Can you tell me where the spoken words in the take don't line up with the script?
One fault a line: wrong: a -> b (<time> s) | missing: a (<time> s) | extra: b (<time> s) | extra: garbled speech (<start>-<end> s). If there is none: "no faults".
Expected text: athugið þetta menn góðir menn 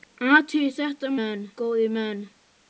no faults